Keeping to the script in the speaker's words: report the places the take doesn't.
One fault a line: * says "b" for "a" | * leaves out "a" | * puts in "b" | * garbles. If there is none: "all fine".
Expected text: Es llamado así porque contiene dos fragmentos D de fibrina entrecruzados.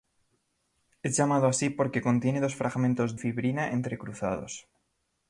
* leaves out "D de"